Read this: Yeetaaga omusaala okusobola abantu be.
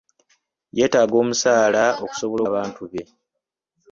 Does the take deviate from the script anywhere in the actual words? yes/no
no